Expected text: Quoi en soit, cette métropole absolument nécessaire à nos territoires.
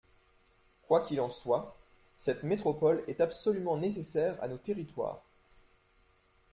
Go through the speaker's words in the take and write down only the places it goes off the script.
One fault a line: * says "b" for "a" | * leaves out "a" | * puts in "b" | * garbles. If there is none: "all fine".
* puts in "qu'il"
* puts in "est"